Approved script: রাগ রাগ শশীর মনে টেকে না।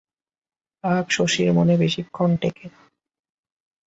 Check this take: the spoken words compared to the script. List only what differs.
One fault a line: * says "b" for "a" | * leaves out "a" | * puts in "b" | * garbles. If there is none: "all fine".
* leaves out "রাগ"
* puts in "বেশিক্ষণ"